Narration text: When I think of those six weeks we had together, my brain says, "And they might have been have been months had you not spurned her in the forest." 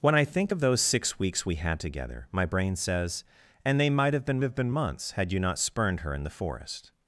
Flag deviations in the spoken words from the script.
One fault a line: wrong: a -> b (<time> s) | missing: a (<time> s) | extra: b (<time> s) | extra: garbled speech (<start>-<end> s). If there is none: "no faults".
no faults